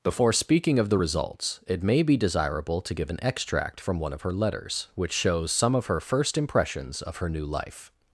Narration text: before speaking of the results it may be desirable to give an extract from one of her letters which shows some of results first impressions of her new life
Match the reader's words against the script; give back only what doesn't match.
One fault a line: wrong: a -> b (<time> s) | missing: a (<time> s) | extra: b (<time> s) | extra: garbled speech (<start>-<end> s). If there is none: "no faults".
wrong: results -> her (5.8 s)